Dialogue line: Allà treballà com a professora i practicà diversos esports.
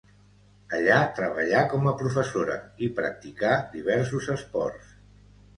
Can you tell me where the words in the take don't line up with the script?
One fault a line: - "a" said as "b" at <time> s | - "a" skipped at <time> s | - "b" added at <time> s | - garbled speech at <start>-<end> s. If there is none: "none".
none